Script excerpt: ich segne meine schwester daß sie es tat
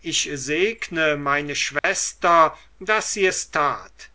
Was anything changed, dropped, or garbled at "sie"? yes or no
no